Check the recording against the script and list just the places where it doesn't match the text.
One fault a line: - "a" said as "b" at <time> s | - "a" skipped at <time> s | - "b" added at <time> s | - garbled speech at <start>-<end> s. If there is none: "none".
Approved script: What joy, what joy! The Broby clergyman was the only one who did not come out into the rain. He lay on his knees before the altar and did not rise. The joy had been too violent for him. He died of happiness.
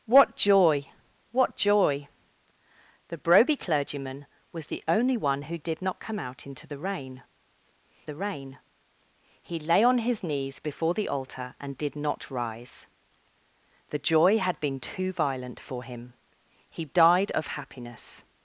- "the rain" added at 8.0 s